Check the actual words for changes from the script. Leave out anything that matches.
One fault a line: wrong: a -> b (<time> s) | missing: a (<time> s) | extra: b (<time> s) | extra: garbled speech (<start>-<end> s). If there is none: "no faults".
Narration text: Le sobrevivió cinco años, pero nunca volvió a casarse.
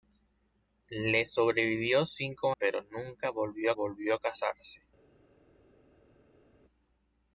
missing: años (2.5 s)
extra: volvió (3.7 s)